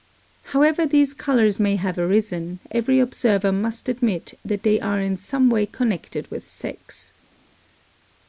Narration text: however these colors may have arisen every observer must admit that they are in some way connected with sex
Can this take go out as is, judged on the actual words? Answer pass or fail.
pass